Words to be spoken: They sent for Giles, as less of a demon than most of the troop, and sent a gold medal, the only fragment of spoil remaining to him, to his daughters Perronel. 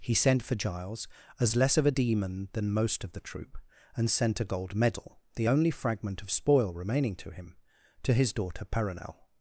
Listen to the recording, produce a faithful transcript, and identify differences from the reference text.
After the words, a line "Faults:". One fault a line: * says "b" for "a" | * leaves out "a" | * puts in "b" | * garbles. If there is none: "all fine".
He sent for Giles, as less of a demon than most of the troop, and sent a gold medal, the only fragment of spoil remaining to him, to his daughter Perronel.
Faults:
* says "He" for "They"
* says "daughter" for "daughters"